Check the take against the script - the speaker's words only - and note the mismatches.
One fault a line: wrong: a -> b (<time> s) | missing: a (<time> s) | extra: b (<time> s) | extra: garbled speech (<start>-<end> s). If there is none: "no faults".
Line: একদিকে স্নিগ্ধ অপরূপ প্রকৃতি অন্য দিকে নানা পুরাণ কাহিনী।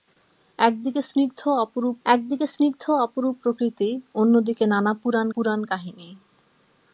extra: একদিকে স্নিগ্ধ অপরূপ (2.1 s)
extra: পুরাণ (5.3 s)